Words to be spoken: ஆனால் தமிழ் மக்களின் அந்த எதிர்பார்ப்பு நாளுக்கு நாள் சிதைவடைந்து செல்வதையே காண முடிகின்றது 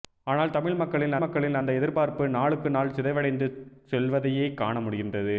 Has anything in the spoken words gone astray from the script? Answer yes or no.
yes